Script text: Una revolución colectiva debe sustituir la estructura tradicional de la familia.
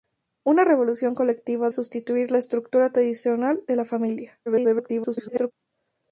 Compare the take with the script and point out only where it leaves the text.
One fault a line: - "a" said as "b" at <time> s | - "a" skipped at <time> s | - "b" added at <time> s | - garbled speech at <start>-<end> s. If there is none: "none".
- "debe" skipped at 1.7 s
- garbled speech at 4.5-5.5 s